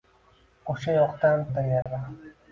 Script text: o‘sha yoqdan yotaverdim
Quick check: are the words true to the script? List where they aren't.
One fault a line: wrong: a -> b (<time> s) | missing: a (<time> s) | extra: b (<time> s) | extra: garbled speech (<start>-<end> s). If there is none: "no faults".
no faults